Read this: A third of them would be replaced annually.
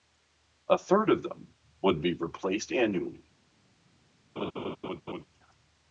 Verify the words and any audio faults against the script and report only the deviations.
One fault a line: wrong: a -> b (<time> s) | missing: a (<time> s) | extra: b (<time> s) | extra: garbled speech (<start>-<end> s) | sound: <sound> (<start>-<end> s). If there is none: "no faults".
sound: laugh (4.4-5.2 s)